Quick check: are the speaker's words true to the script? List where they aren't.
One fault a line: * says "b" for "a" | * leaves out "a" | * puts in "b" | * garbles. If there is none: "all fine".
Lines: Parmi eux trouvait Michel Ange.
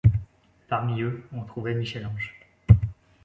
* puts in "on"